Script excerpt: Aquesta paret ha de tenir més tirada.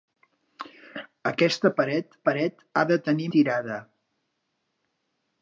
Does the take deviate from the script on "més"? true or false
true